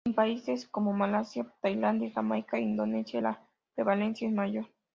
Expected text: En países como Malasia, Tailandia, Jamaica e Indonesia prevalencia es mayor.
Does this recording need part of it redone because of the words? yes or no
yes